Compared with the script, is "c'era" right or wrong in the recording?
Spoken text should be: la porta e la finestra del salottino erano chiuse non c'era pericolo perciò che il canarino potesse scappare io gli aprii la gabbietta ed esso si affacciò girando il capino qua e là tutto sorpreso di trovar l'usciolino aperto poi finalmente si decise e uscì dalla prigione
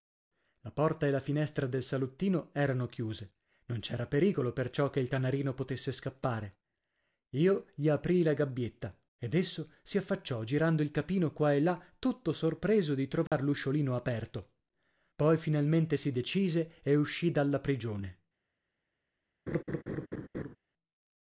right